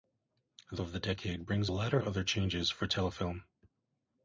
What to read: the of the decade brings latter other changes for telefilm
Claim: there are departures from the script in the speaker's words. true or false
false